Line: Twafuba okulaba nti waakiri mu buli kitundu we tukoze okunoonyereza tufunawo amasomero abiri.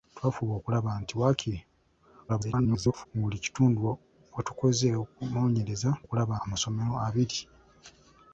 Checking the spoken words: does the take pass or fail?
fail